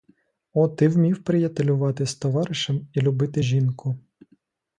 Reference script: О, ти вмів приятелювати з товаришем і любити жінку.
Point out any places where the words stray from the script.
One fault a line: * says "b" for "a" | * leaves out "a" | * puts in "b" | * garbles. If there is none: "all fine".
all fine